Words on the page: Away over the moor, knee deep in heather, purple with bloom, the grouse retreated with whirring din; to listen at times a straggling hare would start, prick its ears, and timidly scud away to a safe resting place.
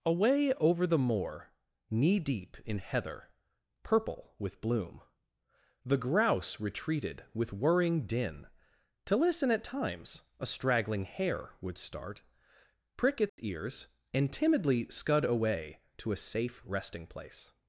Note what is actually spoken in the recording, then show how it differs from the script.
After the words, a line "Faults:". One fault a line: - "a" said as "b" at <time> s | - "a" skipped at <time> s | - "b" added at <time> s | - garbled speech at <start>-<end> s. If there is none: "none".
Away over the moor, knee deep in heather, purple with bloom, the grouse retreated with whirring din; to listen at times a straggling hare would start, prick its ears, and timidly scud away to a safe resting place.
Faults:
none